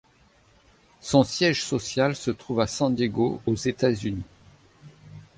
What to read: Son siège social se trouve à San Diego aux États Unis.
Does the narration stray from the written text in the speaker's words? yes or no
no